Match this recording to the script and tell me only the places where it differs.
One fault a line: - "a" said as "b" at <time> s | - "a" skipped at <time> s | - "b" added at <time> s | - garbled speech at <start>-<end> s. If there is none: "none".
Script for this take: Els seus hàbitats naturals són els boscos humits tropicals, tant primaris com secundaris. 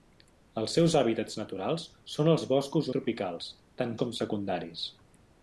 - "humits" skipped at 2.9 s
- "primaris" skipped at 4.0 s